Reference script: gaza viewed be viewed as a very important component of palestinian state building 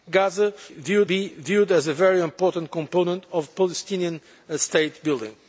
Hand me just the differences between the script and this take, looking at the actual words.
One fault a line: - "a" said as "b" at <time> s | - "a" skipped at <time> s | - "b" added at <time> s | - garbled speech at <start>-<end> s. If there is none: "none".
none